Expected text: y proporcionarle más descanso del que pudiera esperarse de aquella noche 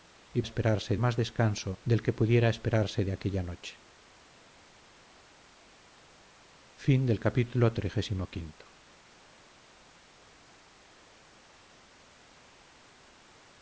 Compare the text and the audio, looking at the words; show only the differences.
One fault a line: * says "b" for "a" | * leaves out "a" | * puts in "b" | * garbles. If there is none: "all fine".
* says "esperarse" for "proporcionarle"